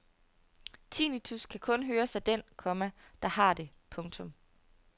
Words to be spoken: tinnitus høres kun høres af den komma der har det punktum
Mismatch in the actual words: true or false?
true